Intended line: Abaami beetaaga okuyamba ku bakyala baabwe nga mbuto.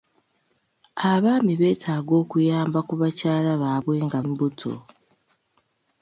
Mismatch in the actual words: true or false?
false